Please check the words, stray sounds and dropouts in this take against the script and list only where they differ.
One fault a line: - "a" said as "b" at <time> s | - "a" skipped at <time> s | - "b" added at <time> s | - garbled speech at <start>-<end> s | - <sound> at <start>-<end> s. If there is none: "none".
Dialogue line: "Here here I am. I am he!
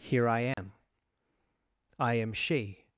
- "here" skipped at 0.3 s
- dropout at 0.5-0.6 s
- "he" said as "she" at 2.3 s